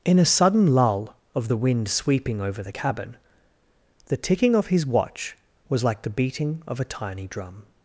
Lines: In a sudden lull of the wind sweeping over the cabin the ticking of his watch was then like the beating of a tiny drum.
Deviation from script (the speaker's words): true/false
true